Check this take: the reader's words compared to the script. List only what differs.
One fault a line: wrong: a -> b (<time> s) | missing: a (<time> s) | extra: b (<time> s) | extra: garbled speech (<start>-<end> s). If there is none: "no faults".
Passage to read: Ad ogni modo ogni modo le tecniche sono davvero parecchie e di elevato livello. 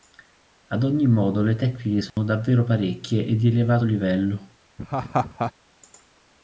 missing: ogni modo (1.4 s)